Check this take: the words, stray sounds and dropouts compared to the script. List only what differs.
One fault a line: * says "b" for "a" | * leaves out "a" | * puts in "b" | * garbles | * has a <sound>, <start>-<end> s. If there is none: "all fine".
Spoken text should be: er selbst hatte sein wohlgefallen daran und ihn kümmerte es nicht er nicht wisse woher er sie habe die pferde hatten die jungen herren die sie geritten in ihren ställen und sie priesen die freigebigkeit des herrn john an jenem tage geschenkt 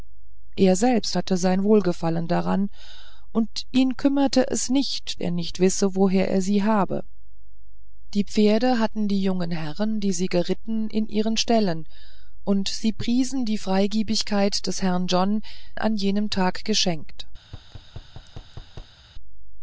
* has a thud, 17.4-19.0 s